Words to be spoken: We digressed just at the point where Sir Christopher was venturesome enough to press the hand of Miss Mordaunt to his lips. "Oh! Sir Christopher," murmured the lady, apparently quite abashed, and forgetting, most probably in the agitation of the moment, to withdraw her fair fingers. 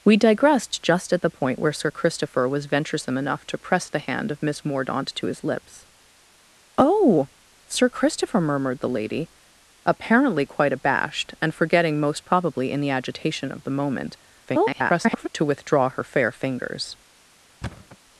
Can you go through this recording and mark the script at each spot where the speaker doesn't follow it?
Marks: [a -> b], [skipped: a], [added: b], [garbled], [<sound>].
We digressed just at the point where Sir Christopher was venturesome enough to press the hand of Miss Mordaunt to his lips. "Oh! Sir Christopher," murmured the lady, apparently quite abashed, and forgetting, most probably in the agitation of the moment, [garbled] to withdraw her fair fingers. [thud]